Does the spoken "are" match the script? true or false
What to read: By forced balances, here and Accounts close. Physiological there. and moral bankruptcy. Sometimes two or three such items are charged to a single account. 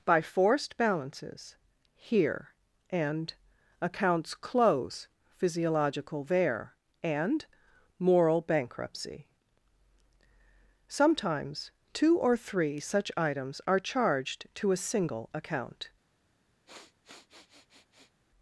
true